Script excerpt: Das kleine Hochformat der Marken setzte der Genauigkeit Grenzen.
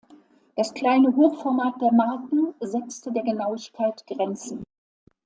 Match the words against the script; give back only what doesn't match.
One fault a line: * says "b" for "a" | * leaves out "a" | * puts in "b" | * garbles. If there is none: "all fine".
all fine